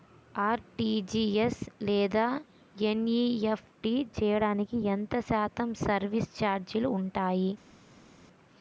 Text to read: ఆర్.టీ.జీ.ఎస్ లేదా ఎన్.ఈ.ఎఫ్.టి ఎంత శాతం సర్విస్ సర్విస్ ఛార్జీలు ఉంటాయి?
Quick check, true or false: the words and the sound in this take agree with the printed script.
false